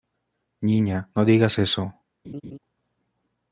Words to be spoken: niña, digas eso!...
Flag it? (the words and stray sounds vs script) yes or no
yes